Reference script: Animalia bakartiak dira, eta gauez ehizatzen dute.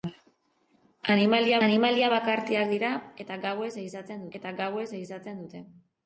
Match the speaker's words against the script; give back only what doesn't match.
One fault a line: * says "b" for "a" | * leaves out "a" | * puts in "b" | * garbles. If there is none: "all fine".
* puts in "animalia"
* puts in "eta gauez ehizatzen"